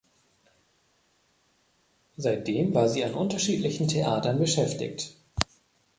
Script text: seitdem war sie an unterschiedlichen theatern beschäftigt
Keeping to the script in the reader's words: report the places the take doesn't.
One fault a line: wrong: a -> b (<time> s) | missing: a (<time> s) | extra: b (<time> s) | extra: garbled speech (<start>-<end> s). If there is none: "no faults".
no faults